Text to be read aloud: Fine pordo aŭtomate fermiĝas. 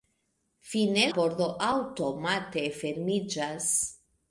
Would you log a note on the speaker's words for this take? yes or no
no